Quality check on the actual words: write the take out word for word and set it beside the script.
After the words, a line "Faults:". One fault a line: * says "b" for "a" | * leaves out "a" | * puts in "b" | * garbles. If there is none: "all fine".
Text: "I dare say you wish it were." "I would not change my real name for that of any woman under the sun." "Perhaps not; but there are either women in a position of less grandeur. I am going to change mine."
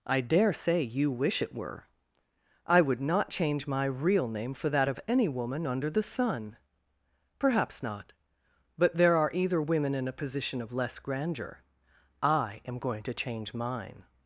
"I dare say you wish it were." "I would not change my real name for that of any woman under the sun." "Perhaps not; but there are either women in a position of less grandeur. I am going to change mine."
Faults:
all fine